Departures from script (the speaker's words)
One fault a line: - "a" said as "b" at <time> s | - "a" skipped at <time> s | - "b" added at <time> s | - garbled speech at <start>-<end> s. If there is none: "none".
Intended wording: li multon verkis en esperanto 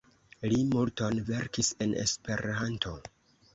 none